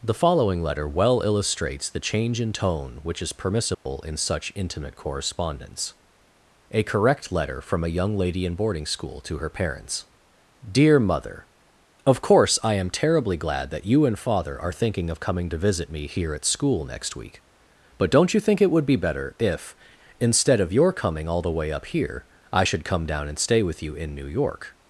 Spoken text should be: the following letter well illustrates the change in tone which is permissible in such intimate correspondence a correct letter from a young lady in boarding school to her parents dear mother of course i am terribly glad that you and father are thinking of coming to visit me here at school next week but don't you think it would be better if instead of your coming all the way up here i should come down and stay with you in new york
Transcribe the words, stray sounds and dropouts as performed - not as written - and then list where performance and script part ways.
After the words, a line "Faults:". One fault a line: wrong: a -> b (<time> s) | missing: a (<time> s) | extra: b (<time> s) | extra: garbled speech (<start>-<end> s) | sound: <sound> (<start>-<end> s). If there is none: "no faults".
the following letter well illustrates the change in tone which is permissible in such intimate correspondence a correct letter from a young lady in boarding school to her parents dear mother of course i am terribly glad that you and father are thinking of coming to visit me here at school next week but don't you think it would be better if instead of your coming all the way up here i should come down and stay with you in new york
Faults:
sound: dropout (3.7-3.9 s)